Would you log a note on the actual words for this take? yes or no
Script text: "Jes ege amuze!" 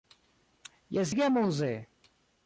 no